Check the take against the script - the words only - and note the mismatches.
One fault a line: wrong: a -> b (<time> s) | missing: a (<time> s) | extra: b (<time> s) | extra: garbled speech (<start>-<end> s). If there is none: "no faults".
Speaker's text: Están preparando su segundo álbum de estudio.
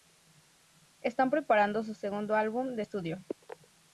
no faults